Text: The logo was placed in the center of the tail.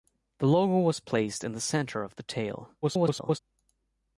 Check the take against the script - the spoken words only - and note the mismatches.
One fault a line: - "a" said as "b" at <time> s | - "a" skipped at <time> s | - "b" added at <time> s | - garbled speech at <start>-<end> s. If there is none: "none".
- garbled speech at 2.8-3.4 s